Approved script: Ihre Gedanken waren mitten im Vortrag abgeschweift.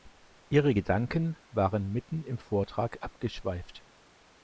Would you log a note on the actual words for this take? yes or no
no